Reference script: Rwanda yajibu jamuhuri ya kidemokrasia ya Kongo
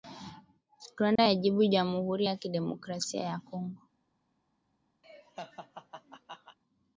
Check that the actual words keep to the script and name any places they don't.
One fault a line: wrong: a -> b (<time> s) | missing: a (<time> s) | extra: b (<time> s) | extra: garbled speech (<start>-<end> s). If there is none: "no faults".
no faults